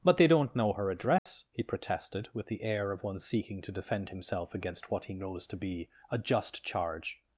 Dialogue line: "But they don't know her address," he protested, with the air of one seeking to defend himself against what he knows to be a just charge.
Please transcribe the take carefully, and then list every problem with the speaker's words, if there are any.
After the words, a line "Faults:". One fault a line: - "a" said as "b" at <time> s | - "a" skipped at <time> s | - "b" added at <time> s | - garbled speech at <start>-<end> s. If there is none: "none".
"But they don't know her address," he protested, with the air of one seeking to defend himself against what he knows to be a just charge.
Faults:
none